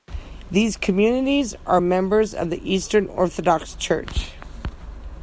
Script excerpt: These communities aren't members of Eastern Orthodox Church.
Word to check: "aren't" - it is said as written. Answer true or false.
false